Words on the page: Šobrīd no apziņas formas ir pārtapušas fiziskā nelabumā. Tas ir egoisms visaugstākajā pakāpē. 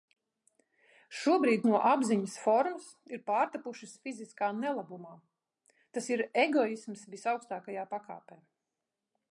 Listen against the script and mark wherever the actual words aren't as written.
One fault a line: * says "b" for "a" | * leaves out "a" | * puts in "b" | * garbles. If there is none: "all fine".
all fine